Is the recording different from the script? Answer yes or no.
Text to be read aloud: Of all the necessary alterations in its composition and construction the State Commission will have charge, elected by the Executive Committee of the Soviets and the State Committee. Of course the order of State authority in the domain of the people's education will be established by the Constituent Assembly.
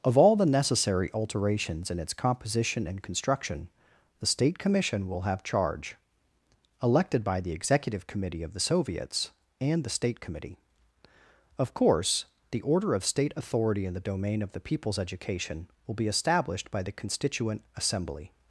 no